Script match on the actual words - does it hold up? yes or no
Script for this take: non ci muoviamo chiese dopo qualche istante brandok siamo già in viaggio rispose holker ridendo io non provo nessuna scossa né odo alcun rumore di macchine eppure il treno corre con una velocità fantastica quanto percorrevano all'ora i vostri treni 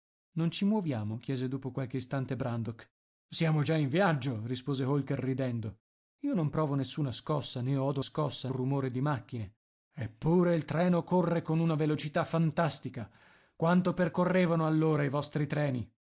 no